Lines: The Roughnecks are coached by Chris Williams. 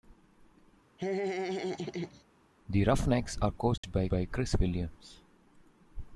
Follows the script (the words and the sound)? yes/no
no